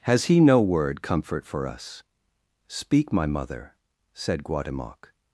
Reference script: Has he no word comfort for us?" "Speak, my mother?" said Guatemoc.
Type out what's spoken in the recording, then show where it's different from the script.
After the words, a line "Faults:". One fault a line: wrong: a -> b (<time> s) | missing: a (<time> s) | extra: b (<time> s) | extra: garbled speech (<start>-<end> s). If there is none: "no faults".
Has he no word comfort for us?" "Speak, my mother?" said Guatemoc.
Faults:
no faults